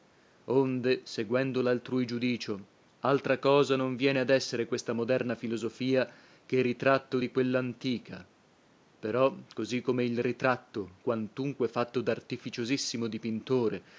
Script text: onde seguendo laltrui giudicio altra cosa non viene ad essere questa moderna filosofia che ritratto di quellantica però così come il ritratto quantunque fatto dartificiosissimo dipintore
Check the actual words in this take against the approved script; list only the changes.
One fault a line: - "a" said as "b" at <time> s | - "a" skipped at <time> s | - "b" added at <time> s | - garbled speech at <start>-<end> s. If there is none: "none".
none